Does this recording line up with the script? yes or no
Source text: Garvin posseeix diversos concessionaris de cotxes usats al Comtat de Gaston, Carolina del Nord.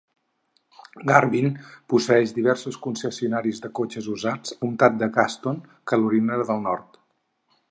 no